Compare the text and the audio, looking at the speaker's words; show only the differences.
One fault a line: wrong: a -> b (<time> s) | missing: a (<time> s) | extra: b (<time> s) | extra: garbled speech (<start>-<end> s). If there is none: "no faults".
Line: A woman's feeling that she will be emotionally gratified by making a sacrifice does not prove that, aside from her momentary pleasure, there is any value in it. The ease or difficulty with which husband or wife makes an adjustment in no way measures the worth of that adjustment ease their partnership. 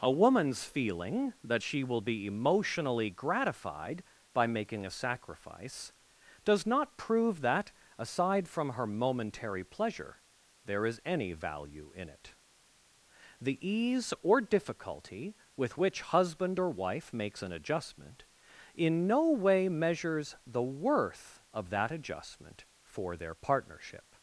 wrong: ease -> for (22.8 s)